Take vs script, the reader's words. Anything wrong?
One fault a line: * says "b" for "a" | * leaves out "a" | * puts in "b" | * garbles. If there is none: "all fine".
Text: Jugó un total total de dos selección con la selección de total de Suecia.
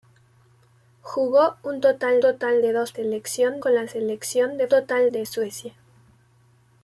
all fine